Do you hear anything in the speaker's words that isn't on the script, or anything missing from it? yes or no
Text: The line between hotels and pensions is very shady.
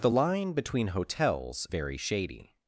yes